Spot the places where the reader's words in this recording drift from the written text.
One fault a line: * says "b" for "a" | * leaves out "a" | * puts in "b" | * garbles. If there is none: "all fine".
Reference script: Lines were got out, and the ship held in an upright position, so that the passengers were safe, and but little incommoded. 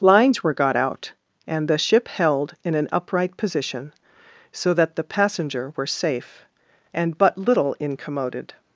* says "passenger" for "passengers"